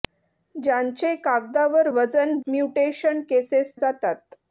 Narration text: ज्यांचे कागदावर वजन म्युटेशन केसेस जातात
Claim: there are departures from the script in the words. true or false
false